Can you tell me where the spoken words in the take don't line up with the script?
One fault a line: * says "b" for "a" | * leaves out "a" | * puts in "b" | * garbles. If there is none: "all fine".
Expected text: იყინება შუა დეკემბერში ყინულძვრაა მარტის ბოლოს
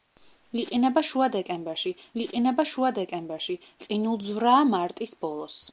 * puts in "იყინება შუა დეკემბერში"